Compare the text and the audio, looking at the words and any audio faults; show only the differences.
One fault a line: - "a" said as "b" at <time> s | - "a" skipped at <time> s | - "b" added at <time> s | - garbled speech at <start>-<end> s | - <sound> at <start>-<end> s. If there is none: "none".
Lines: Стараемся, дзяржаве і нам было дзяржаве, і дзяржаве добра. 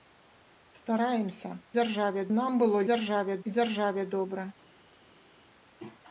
none